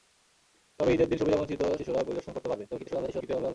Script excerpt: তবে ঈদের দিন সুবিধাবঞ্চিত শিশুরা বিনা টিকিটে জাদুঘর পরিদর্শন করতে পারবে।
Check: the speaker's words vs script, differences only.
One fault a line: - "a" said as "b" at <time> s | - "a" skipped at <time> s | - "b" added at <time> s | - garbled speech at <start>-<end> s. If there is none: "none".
- "বিনা টিকিটে জাদুঘর" skipped at 2.0 s
- garbled speech at 2.7-3.5 s